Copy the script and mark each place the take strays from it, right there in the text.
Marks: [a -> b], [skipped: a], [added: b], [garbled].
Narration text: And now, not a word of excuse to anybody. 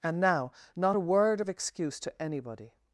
And now, not a word of excuse to anybody.